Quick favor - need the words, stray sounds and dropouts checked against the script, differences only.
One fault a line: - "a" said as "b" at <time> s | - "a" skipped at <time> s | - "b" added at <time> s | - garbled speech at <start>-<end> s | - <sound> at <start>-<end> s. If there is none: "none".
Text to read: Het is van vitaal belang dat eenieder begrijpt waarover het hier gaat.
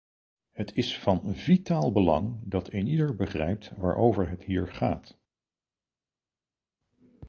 none